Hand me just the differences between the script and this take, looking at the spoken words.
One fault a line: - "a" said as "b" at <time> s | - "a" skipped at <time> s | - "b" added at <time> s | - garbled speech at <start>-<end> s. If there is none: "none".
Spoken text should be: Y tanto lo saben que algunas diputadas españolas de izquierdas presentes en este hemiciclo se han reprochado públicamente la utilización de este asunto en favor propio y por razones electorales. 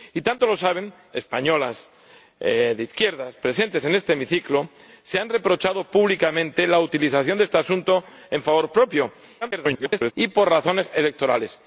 - "que algunas diputadas" skipped at 0.9 s
- garbled speech at 9.4-10.1 s